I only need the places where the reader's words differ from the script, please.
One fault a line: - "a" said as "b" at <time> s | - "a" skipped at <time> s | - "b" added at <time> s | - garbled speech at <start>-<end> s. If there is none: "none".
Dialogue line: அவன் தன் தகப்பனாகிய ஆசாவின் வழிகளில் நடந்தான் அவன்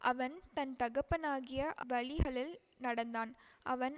- "ஆசாவின்" skipped at 1.6 s